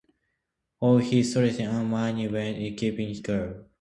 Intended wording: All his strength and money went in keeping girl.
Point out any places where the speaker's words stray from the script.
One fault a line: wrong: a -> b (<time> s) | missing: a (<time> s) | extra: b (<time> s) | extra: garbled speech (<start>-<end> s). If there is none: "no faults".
no faults